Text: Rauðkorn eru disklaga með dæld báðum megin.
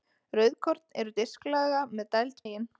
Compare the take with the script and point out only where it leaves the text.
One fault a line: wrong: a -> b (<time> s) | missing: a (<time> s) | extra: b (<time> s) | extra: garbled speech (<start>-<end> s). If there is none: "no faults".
missing: báðum (2.4 s)